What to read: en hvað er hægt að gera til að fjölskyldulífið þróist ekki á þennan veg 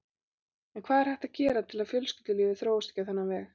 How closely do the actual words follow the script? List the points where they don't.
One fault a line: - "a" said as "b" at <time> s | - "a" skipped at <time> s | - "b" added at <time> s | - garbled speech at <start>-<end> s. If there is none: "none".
none